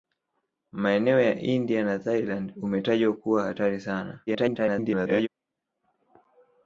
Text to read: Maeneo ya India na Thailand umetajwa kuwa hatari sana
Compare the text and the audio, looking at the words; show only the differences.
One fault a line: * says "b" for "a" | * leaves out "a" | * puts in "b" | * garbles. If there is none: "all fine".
* garbles